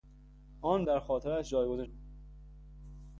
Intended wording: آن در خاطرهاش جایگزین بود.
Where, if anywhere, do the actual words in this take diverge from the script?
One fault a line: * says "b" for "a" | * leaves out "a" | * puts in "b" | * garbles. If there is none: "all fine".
all fine